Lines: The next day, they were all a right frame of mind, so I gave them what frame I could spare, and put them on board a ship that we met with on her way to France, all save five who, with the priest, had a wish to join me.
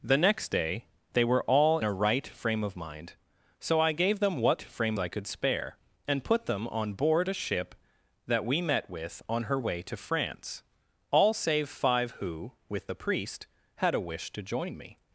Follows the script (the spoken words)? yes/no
yes